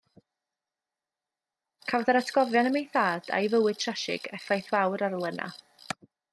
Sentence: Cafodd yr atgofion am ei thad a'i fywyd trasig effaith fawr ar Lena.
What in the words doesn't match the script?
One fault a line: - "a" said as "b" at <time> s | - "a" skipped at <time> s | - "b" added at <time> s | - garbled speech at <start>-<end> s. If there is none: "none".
none